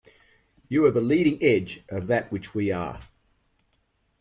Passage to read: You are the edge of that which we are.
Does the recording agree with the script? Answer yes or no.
no